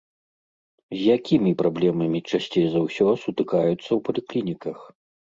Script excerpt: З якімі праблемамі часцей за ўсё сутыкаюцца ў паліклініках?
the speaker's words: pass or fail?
pass